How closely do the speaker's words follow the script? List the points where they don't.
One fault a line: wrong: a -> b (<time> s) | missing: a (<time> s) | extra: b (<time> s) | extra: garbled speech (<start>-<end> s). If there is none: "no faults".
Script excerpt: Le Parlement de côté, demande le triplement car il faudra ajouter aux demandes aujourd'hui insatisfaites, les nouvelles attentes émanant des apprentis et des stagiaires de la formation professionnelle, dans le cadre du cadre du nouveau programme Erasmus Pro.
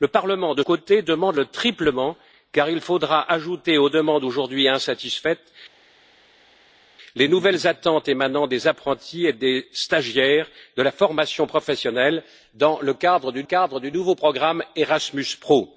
no faults